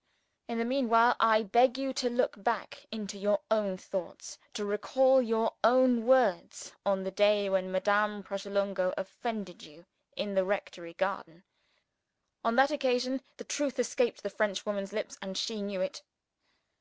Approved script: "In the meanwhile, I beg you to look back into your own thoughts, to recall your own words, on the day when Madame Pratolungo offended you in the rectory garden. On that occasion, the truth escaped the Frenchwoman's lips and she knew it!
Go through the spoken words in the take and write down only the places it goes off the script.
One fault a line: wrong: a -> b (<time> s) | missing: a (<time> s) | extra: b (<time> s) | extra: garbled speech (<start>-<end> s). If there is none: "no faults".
no faults